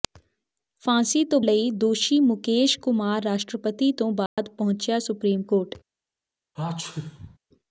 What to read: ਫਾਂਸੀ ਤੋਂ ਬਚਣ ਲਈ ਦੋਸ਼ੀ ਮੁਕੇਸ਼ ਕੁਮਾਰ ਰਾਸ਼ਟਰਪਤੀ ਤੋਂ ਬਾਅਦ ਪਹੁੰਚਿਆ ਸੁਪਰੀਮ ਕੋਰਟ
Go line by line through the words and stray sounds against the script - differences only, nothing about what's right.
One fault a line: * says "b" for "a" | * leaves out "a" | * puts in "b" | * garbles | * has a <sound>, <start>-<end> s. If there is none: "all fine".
* leaves out "ਬਚਣ"
* has a dropout, 4.3-4.4 s
* has a sneeze, 6.5-7.4 s